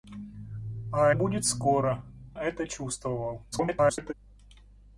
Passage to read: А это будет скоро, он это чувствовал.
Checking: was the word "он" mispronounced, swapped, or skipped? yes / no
yes